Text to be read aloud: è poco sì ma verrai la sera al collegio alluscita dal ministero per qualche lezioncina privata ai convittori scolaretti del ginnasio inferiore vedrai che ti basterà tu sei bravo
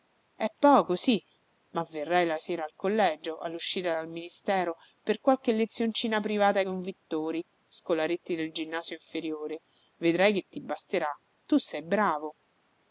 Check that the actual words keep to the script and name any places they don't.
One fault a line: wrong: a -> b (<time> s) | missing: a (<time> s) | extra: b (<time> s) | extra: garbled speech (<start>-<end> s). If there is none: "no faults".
no faults